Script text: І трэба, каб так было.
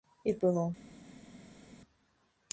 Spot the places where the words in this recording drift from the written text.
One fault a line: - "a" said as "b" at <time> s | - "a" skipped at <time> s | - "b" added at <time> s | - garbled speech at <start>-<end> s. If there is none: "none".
- "трэба каб так" skipped at 0.3 s